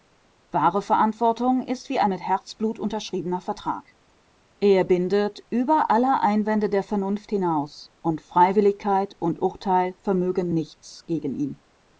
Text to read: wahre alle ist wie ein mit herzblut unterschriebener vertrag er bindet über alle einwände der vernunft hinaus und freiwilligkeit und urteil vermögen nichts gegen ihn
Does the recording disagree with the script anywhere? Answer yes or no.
yes